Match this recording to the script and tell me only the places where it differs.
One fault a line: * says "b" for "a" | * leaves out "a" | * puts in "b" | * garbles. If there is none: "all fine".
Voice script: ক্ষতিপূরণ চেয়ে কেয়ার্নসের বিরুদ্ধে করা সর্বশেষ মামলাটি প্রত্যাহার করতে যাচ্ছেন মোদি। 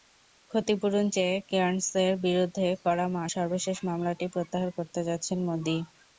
all fine